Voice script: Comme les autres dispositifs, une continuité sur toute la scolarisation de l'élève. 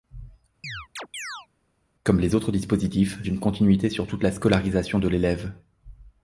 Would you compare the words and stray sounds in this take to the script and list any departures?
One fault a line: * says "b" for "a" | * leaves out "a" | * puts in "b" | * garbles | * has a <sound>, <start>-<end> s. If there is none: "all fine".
* has a chirp, 0.6-1.5 s